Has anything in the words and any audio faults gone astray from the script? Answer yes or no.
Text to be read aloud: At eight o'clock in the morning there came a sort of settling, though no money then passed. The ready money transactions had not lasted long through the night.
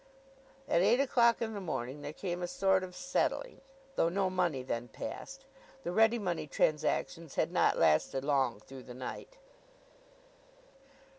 no